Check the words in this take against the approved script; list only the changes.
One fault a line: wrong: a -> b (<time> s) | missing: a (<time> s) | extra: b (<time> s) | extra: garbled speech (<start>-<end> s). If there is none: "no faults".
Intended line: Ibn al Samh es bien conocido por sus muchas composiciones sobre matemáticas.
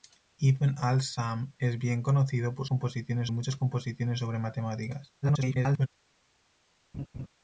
wrong: sus -> composiciones (2.6 s)
extra: garbled speech (5.2-5.9 s)